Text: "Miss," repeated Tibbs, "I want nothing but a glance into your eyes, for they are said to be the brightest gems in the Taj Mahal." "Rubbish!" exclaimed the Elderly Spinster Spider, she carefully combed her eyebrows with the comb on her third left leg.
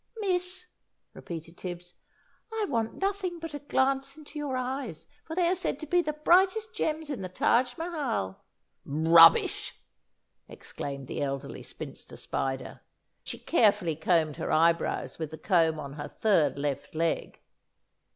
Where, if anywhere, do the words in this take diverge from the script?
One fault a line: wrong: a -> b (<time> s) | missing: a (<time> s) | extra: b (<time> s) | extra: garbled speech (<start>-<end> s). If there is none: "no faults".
no faults